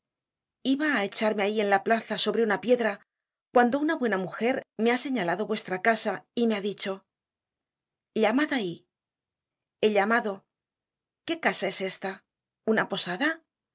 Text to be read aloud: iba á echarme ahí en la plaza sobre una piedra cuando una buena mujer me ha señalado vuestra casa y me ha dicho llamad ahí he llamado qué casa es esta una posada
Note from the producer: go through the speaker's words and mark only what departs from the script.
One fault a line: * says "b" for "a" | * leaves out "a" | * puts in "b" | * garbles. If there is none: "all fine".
all fine